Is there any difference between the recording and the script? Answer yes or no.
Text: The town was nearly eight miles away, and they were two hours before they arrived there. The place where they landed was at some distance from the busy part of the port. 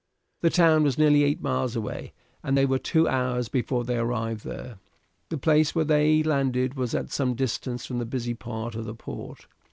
no